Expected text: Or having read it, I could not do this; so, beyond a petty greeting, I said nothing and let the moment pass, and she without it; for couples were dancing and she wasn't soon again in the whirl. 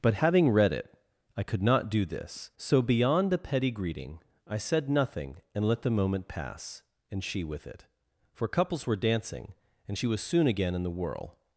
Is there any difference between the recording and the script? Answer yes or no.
yes